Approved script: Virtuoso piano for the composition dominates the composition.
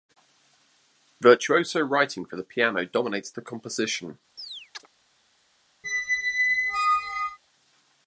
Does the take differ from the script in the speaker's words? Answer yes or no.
yes